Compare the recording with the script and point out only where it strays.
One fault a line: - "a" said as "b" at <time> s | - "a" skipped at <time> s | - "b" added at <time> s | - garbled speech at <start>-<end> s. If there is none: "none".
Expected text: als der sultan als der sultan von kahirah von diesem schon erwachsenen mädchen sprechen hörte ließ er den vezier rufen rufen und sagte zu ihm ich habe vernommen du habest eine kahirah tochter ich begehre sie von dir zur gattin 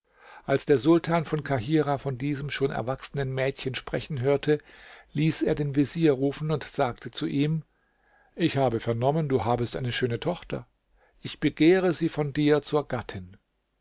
- "als der sultan" skipped at 1.2 s
- "rufen" skipped at 6.5 s
- "kahirah" said as "schöne" at 9.9 s